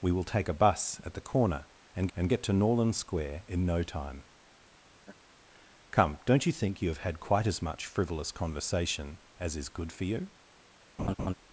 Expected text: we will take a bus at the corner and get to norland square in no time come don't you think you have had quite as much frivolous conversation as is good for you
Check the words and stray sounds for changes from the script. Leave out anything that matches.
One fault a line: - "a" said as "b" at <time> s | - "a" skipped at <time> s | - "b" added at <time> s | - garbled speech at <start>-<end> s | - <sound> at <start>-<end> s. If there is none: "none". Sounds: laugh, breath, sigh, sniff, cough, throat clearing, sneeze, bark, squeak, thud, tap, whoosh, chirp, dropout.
- "and" added at 2.2 s
- laugh at 5.0-5.2 s
- laugh at 11.0-11.3 s